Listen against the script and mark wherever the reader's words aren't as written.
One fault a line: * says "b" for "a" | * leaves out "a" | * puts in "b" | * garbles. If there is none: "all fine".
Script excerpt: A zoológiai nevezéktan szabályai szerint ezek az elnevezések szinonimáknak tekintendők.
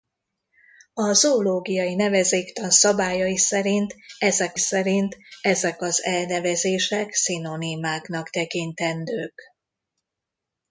* puts in "szerint ezek"